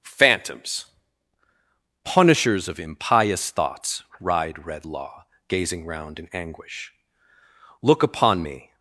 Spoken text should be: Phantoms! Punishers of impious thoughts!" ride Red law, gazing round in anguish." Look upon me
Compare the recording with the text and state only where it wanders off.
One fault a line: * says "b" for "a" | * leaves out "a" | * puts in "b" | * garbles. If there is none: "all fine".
all fine